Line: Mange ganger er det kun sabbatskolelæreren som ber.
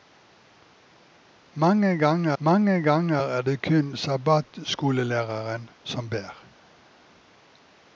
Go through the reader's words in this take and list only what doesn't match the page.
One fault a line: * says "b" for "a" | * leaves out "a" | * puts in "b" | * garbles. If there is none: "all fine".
* puts in "mange ganger"